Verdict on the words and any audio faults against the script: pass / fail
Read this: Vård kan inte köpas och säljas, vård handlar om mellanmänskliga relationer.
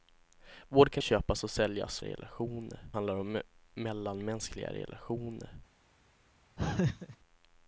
fail